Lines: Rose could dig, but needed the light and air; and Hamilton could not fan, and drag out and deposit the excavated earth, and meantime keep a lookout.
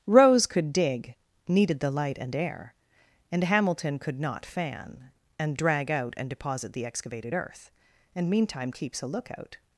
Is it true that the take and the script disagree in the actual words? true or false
true